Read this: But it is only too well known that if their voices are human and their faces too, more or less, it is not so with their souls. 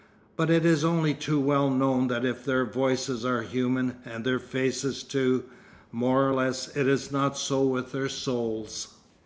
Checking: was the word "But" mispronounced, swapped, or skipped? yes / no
no